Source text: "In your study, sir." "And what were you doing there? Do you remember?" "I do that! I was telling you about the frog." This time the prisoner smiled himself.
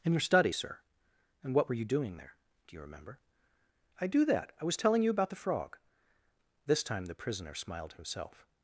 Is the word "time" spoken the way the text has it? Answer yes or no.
yes